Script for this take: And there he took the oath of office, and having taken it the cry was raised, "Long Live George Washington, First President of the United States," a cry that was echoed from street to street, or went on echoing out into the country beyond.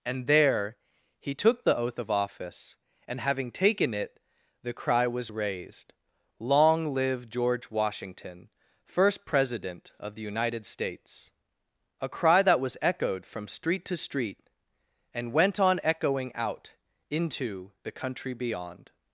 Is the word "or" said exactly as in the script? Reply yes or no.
no